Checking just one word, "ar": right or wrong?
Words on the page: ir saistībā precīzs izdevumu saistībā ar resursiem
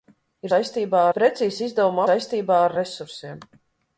right